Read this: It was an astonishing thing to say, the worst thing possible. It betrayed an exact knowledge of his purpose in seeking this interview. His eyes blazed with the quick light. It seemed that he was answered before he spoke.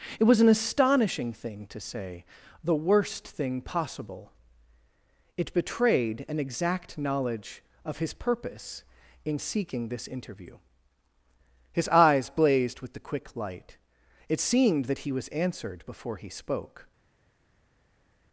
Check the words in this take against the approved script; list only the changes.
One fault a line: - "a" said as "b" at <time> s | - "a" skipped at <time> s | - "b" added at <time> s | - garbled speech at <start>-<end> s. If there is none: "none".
none